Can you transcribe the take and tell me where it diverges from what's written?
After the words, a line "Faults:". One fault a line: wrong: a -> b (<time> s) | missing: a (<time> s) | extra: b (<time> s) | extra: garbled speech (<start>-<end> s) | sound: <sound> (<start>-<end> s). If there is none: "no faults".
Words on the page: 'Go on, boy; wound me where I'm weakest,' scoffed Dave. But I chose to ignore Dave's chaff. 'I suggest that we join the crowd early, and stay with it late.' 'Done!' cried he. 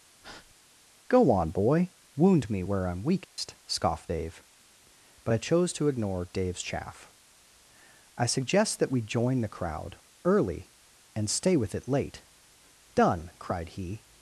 'Go on, boy; wound me where I'm weakest,' scoffed Dave. But I chose to ignore Dave's chaff. 'I suggest that we join the crowd early, and stay with it late.' 'Done!' cried he.
Faults:
sound: breath (0.2-0.5 s)
sound: dropout (3.2-3.4 s)